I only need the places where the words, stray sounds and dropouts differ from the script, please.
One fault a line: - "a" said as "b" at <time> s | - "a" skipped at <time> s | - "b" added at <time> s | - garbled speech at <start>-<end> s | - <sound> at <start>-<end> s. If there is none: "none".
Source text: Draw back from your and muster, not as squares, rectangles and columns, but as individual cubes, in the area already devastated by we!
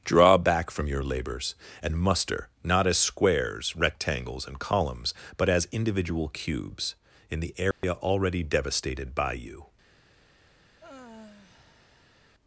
- "labors" added at 1.0 s
- dropout at 7.7-7.8 s
- "we" said as "you" at 9.3 s
- sigh at 10.8-12.2 s